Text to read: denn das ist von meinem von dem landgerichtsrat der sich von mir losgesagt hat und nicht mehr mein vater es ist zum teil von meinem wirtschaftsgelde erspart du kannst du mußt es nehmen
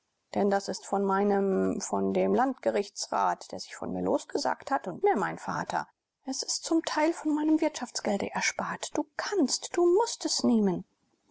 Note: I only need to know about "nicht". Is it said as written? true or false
false